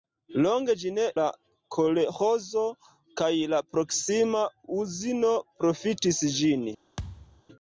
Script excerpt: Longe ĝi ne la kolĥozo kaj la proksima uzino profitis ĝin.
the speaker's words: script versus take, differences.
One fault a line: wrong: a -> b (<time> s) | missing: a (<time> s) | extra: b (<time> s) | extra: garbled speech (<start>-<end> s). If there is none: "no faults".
no faults